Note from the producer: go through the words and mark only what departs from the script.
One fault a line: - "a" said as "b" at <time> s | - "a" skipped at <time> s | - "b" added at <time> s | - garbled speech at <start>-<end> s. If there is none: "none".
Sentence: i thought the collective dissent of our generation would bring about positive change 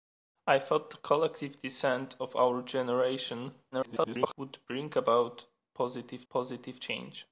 - garbled speech at 3.7-4.4 s
- "positive" added at 6.3 s